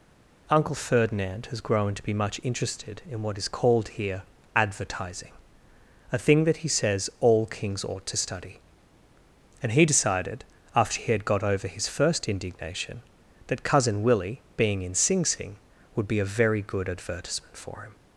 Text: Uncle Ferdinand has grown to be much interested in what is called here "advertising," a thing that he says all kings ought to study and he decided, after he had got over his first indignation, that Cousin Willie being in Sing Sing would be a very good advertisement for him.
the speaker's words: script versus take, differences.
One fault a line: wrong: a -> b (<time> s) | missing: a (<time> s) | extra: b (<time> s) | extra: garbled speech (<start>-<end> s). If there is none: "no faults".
no faults